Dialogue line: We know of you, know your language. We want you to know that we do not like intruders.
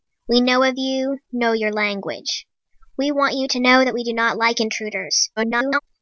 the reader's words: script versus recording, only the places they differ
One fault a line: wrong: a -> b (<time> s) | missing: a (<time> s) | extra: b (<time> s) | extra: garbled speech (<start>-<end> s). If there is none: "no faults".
extra: garbled speech (5.4-5.8 s)